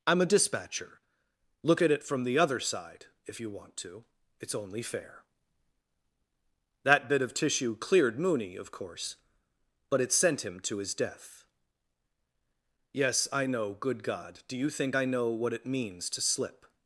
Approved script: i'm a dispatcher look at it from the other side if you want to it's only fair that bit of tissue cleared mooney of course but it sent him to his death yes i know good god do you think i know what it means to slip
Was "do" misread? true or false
false